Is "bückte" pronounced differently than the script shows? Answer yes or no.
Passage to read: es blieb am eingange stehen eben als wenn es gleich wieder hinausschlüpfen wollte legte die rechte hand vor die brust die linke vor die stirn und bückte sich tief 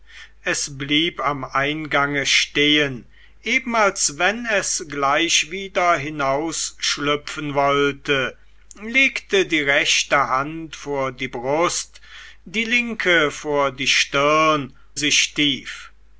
yes